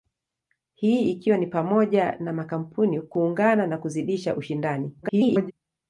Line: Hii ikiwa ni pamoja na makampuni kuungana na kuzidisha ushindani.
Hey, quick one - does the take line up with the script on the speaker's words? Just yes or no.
no